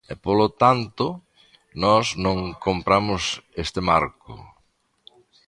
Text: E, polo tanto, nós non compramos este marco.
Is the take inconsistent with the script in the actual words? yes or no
no